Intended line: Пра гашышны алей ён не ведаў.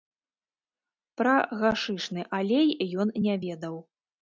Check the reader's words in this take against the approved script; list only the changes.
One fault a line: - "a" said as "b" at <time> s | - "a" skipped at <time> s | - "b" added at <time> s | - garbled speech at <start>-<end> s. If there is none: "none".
none